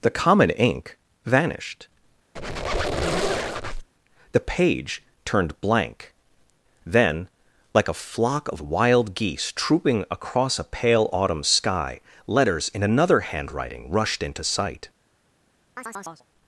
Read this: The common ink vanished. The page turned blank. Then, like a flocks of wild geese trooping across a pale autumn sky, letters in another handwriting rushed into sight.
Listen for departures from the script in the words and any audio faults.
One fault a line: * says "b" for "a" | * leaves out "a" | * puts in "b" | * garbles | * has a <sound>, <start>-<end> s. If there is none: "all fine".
* has a squeak, 2.4-3.9 s
* says "flock" for "flocks"
* has a chirp, 15.8-16.3 s